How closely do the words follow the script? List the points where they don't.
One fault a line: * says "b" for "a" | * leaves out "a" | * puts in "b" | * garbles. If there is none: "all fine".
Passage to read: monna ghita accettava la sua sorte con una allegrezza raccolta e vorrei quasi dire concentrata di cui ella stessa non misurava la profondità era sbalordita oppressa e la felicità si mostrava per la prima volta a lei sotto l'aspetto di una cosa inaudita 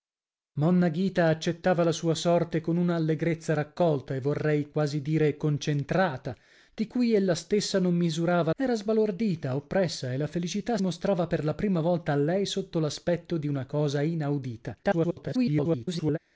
* leaves out "la profondità"
* leaves out "si"
* garbles